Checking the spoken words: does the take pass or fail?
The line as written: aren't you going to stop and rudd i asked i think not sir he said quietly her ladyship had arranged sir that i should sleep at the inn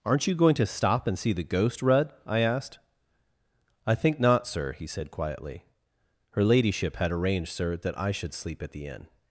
fail